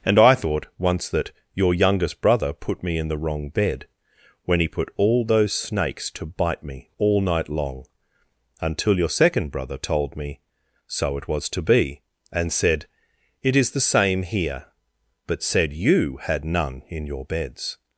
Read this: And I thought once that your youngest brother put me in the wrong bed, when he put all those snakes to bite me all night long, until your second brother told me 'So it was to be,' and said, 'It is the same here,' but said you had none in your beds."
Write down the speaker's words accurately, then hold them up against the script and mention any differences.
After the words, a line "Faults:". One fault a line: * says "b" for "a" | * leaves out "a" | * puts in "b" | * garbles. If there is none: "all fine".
And I thought once that your youngest brother put me in the wrong bed, when he put all those snakes to bite me all night long, until your second brother told me 'So it was to be,' and said, 'It is the same here,' but said you had none in your beds."
Faults:
all fine